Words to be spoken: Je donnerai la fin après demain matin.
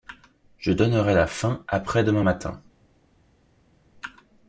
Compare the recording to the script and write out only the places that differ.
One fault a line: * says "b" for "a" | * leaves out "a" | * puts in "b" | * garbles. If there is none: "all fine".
all fine